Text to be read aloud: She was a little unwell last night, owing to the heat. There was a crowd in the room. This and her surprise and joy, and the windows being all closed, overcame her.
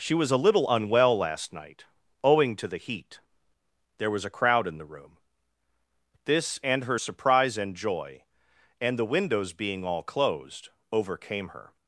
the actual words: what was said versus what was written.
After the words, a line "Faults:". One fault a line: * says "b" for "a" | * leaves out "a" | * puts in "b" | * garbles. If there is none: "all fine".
She was a little unwell last night, owing to the heat. There was a crowd in the room. This and her surprise and joy, and the windows being all closed, overcame her.
Faults:
all fine